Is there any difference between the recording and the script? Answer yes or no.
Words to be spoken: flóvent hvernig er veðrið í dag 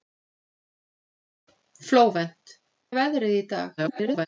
yes